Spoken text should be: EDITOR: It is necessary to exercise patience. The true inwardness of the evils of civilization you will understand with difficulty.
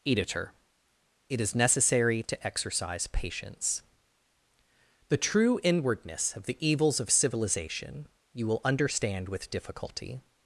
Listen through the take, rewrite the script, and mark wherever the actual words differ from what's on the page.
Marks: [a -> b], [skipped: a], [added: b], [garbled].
EDITOR: It is necessary to exercise patience. The true inwardness of the evils of civilization you will understand with difficulty.